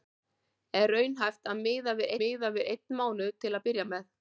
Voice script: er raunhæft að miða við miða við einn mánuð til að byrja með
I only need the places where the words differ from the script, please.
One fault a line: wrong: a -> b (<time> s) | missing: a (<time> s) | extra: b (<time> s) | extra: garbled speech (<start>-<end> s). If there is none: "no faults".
no faults